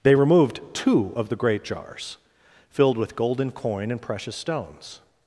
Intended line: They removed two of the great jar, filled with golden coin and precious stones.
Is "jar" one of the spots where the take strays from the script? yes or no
yes